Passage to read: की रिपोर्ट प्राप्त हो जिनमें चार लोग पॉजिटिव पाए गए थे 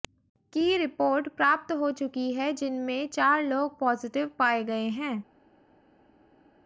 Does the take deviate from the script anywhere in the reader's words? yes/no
yes